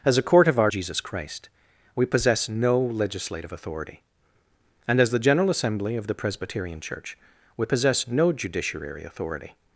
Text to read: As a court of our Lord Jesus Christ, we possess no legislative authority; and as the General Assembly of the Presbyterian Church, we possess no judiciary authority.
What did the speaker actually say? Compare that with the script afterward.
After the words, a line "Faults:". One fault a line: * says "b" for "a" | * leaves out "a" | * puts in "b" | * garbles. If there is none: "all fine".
As a court of our Jesus Christ, we possess no legislative authority; and as the General Assembly of the Presbyterian Church, we possess no judiciary authority.
Faults:
* leaves out "Lord"